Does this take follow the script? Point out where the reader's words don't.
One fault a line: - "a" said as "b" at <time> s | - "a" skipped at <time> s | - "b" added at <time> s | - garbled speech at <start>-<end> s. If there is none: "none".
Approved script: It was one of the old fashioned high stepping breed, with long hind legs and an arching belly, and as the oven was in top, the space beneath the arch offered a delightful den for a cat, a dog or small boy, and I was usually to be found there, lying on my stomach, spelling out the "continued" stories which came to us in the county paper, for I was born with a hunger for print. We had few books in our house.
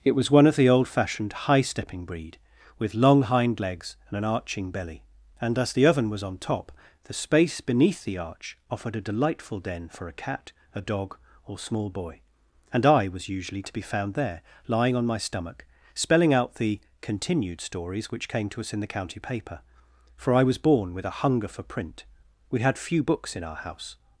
- "in" said as "on" at 6.2 s